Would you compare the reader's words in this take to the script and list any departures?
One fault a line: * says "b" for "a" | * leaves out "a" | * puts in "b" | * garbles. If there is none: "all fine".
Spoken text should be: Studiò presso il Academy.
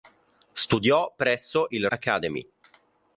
all fine